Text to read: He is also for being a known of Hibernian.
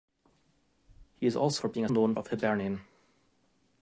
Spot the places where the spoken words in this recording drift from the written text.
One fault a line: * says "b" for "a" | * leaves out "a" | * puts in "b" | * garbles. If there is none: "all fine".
all fine